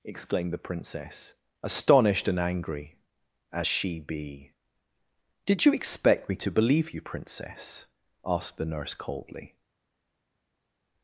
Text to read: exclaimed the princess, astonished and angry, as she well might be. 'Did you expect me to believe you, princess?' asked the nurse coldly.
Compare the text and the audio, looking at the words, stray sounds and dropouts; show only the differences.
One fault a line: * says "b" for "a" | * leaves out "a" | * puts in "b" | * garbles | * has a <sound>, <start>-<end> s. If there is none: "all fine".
* leaves out "well might"